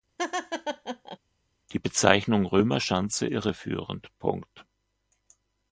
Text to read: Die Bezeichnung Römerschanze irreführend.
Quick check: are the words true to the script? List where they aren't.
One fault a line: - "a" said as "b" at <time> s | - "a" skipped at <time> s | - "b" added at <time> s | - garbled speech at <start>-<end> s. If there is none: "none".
none